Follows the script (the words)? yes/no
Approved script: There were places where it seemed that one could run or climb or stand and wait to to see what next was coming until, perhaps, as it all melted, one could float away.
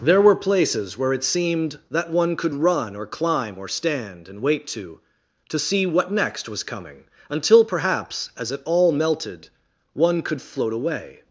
yes